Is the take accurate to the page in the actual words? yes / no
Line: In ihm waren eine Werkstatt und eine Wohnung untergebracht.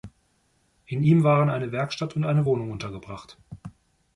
yes